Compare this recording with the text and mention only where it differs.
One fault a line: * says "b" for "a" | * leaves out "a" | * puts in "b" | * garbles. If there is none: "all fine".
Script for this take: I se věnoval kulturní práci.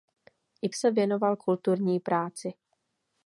all fine